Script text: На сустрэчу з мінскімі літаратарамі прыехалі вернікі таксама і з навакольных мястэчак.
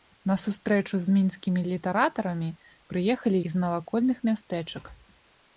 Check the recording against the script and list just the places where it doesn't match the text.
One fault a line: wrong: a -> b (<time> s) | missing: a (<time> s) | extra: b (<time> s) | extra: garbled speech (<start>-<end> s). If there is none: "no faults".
missing: вернікі таксама (3.4 s)